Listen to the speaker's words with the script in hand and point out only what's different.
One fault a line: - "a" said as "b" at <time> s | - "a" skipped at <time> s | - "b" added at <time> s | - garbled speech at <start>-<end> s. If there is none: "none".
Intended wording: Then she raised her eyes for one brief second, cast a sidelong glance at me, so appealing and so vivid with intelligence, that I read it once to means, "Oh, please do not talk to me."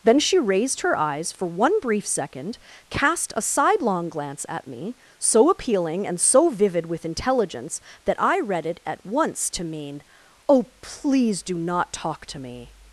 - "at" added at 8.8 s
- "means" said as "mean" at 9.6 s